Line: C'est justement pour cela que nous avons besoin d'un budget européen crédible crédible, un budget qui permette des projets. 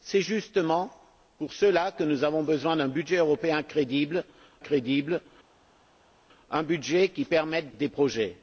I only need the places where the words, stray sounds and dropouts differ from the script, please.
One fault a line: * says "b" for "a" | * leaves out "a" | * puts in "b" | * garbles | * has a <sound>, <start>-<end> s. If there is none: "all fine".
all fine